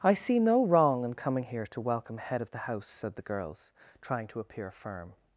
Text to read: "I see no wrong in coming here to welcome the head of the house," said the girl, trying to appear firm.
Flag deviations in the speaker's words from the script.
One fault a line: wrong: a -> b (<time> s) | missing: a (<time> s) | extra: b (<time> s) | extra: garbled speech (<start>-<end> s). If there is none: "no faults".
missing: the (2.2 s)
wrong: girl -> girls (3.2 s)